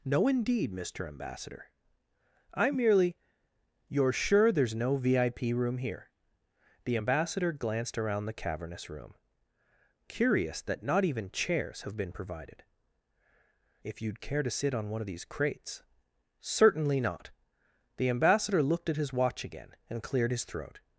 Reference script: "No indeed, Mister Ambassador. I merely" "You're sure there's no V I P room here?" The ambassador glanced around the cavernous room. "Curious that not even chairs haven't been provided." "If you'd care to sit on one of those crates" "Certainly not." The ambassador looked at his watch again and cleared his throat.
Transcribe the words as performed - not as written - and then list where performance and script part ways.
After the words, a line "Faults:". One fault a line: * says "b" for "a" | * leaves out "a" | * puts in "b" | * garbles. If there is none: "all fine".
"No indeed, Mister Ambassador. I merely" "You're sure there's no V I P room here?" The ambassador glanced around the cavernous room. "Curious that not even chairs have been provided." "If you'd care to sit on one of these crates" "Certainly not." The ambassador looked at his watch again and cleared his throat.
Faults:
* says "have" for "haven't"
* says "these" for "those"